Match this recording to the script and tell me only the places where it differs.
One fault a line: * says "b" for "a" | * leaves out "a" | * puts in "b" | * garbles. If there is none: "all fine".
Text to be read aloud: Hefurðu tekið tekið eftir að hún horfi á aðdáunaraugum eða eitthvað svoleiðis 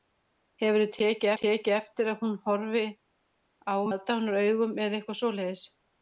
all fine